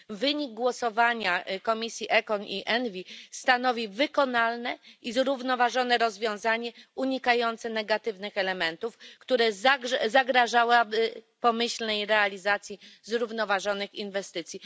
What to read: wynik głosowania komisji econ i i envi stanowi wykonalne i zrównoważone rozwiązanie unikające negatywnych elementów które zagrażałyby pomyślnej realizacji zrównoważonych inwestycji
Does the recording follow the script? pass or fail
fail